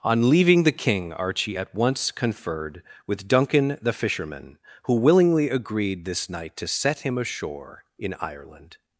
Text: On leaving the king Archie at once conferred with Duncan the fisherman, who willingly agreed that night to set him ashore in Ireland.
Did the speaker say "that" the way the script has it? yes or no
no